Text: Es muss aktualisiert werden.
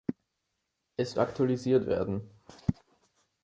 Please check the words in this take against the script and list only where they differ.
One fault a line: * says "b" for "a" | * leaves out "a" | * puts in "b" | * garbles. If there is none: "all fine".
* leaves out "muss"